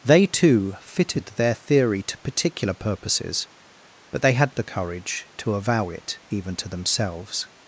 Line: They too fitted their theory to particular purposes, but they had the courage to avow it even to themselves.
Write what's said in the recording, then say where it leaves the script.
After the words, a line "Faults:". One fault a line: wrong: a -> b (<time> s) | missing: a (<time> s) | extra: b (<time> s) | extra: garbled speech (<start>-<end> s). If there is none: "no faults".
They too fitted their theory to particular purposes, but they had the courage to avow it even to themselves.
Faults:
no faults